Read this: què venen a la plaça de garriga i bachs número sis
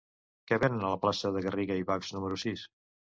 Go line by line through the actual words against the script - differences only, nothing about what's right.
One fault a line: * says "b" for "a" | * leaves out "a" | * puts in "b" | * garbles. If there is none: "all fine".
all fine